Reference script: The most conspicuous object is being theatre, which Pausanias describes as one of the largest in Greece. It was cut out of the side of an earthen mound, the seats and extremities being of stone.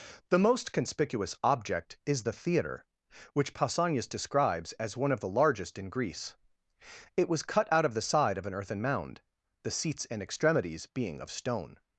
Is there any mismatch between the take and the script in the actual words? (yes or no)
yes